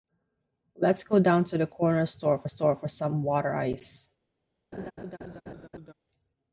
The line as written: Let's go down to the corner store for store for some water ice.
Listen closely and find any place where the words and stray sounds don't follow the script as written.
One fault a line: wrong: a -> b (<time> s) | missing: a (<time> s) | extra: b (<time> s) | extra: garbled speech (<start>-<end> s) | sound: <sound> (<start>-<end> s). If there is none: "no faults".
sound: laugh (4.7-5.9 s)